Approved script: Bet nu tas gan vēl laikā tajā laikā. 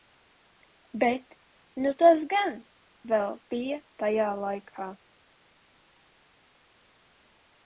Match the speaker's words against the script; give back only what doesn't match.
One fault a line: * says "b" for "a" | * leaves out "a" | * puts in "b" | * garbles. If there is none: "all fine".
* says "bija" for "laikā"